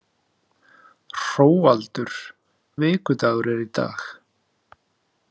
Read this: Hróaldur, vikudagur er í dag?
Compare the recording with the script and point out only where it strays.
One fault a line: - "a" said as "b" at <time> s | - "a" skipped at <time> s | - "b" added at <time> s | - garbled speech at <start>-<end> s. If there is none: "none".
none